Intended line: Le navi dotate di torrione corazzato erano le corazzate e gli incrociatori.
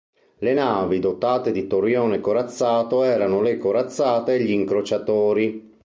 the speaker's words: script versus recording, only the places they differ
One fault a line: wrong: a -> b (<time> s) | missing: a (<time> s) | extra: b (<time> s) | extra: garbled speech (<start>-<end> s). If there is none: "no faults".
no faults